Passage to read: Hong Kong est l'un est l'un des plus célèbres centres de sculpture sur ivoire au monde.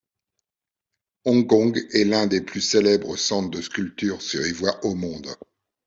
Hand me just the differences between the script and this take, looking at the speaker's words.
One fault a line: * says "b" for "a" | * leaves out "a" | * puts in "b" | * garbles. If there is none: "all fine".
* leaves out "est l'un"